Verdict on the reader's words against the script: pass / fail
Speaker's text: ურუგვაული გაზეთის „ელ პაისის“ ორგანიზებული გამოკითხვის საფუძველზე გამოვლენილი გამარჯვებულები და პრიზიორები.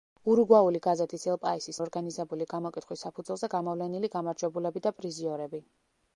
pass